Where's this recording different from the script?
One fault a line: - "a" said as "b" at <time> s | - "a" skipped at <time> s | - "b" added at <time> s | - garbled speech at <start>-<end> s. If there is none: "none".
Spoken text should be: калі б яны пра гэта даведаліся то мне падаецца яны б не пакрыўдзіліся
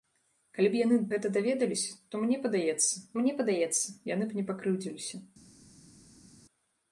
- "пра" skipped at 1.0 s
- "мне падаецца" added at 3.2 s